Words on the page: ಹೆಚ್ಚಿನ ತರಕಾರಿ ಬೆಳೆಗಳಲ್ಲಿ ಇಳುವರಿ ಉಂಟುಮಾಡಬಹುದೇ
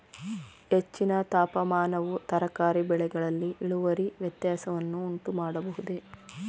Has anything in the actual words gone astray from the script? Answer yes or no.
yes